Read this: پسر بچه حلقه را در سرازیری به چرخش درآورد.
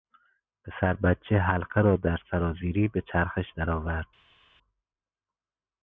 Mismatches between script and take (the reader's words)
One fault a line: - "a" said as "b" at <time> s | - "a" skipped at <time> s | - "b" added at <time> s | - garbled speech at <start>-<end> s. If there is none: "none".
none